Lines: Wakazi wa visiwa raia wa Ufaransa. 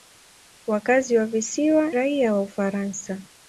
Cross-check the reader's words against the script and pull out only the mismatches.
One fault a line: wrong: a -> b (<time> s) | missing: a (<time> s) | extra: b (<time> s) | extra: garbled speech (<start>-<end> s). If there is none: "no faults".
no faults